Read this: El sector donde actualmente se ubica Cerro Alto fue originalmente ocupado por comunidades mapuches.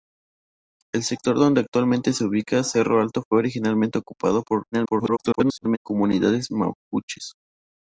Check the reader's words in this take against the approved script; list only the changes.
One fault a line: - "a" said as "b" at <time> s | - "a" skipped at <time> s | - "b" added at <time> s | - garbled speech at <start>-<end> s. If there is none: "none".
- garbled speech at 4.7-5.8 s